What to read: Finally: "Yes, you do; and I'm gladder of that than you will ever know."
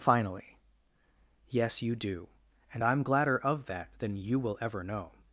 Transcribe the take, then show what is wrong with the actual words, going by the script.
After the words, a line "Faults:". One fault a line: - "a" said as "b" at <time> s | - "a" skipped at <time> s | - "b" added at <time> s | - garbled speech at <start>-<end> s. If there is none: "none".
Finally: "Yes, you do; and I'm gladder of that than you will ever know."
Faults:
none